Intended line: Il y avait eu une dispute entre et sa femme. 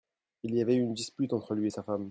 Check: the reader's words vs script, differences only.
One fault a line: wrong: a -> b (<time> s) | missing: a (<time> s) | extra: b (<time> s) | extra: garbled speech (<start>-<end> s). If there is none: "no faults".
extra: lui (1.5 s)